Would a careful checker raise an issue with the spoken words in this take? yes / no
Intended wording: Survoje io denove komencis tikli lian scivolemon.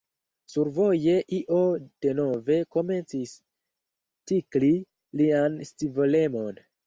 no